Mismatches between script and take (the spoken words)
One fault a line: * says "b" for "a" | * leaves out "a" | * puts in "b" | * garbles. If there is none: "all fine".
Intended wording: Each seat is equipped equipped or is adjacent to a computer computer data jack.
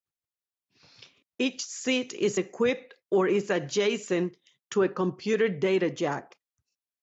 * leaves out "equipped"
* leaves out "computer"